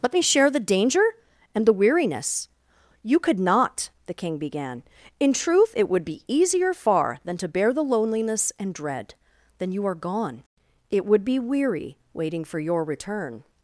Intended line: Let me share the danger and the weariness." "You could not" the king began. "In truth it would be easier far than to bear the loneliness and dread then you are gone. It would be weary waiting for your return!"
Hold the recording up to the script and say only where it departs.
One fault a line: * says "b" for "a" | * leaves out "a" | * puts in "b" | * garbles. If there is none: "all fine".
all fine